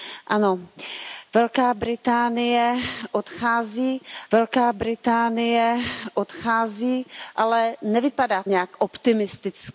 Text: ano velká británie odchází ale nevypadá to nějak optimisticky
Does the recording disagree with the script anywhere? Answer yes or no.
yes